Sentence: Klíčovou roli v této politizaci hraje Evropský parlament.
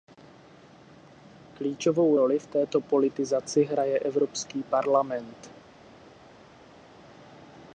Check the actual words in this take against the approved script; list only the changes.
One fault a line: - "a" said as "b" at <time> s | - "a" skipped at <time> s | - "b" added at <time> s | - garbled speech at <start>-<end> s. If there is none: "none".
none